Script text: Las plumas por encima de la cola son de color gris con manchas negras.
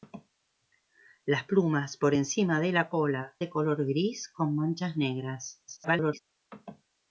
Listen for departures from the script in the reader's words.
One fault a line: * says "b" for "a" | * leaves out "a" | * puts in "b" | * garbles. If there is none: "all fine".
* leaves out "son"
* garbles